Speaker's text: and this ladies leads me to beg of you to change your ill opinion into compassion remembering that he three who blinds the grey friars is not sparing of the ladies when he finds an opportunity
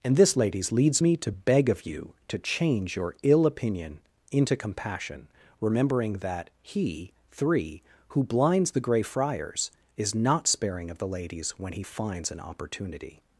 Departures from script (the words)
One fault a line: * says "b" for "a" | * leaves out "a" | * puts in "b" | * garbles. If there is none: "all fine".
all fine